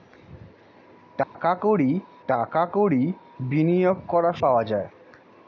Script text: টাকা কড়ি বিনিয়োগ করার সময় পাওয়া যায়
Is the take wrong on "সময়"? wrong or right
wrong